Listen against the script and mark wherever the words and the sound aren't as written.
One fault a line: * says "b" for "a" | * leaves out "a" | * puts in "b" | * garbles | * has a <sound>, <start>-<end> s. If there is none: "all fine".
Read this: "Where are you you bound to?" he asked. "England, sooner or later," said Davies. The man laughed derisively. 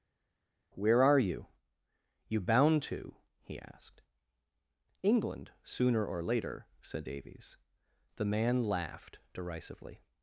all fine